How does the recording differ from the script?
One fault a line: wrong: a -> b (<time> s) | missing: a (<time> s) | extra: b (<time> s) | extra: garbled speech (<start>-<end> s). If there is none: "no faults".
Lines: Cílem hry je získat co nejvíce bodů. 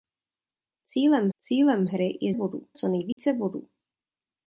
extra: cílem (1.4 s)
wrong: získat -> bodů (2.3 s)